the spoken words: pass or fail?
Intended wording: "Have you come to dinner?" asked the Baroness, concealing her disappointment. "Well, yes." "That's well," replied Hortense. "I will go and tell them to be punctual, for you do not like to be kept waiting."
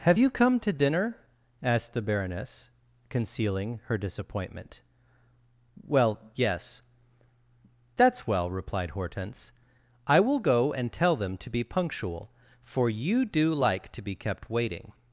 fail